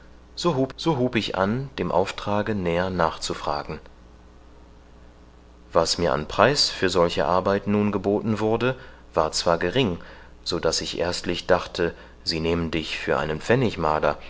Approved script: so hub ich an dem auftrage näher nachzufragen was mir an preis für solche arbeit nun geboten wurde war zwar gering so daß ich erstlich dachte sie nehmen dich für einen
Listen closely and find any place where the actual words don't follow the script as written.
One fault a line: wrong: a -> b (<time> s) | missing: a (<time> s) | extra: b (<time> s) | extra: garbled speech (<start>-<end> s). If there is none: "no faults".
extra: so hub (0.8 s)